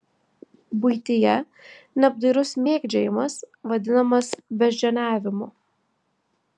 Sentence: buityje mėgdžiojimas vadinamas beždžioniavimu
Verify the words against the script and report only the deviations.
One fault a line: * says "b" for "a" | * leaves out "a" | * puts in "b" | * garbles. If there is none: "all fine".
* puts in "neapdairus"